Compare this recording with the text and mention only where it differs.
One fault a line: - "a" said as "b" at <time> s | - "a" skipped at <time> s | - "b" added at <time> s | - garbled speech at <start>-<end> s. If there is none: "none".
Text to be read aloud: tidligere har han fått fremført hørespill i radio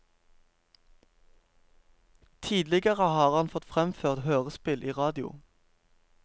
none